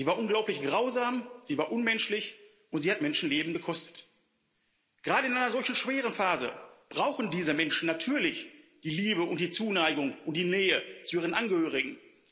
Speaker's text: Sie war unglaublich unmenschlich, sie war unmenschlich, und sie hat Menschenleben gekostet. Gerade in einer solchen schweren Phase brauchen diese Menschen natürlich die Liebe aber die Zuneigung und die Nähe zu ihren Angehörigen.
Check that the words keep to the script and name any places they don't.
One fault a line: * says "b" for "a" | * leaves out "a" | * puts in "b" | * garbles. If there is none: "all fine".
* says "grausam" for "unmenschlich"
* says "und" for "aber"